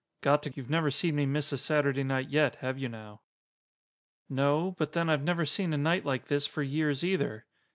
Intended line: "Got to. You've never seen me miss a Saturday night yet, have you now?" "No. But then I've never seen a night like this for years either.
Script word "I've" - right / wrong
right